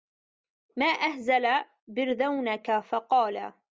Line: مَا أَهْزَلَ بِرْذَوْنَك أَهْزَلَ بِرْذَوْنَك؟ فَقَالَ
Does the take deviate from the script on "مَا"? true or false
false